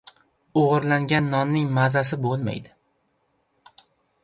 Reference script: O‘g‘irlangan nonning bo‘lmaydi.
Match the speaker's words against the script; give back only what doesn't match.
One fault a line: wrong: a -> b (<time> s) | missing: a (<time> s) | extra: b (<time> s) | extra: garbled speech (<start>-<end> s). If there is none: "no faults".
extra: mazasi (1.8 s)